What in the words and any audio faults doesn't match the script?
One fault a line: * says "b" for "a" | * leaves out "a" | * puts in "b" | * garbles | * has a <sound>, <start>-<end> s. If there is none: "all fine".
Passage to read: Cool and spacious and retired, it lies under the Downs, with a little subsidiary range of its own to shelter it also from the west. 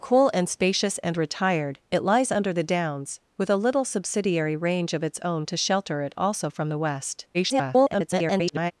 * garbles